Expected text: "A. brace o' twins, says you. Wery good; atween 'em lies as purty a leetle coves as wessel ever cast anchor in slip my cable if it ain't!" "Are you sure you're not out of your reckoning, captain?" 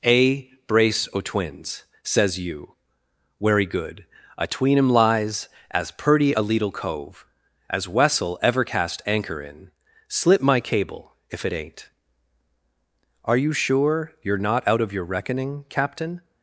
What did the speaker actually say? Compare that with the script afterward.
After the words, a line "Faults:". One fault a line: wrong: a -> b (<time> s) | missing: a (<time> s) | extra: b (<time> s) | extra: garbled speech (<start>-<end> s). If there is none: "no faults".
"A. brace o' twins, says you. Wery good; atween 'em lies as purty a leetle cove as wessel ever cast anchor in slip my cable if it ain't!" "Are you sure you're not out of your reckoning, captain?"
Faults:
wrong: coves -> cove (6.7 s)